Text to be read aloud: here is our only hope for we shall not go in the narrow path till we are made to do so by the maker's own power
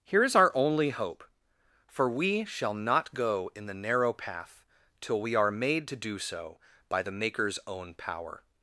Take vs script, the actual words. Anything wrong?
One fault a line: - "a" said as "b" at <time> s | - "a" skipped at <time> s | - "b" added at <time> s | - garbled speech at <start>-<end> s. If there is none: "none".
none